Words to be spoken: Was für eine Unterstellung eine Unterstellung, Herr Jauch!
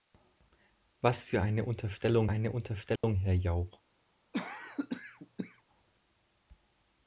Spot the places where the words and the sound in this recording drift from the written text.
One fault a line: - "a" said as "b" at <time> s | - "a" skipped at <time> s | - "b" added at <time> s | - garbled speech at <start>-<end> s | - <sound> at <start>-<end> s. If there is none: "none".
- dropout at 3.0-3.0 s
- cough at 4.3-5.6 s